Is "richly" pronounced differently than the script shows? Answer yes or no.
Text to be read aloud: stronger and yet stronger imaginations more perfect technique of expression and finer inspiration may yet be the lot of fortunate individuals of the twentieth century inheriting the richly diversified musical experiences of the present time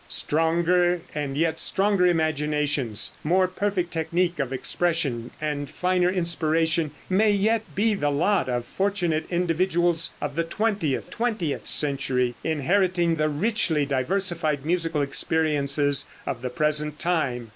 no